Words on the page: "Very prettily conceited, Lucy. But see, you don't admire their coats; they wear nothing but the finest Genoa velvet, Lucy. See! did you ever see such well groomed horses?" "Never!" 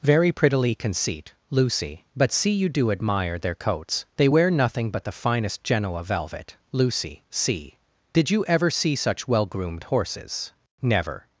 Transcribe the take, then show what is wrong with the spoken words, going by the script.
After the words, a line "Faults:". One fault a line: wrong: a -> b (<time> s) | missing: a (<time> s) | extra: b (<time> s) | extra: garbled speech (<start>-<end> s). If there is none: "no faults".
"Very prettily conceit, Lucy. But see, you do admire their coats; they wear nothing but the finest Genoa velvet, Lucy. See! did you ever see such well groomed horses?" "Never!"
Faults:
wrong: conceited -> conceit (0.7 s)
wrong: don't -> do (2.7 s)